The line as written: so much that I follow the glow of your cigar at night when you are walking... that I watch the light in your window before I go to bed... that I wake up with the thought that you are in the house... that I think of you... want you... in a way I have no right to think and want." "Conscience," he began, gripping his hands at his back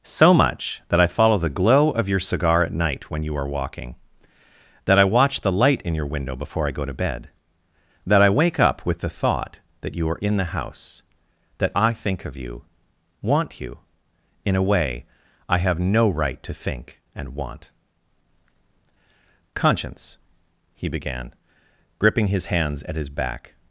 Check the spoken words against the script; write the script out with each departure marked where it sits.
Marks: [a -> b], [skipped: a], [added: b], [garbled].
so much that I follow the glow of your cigar at night when you are walking... that I watch the light in your window before I go to bed... that I wake up with the thought that you are in the house... that I think of you... want you... in a way I have no right to think and want." "Conscience," he began, gripping his hands at his back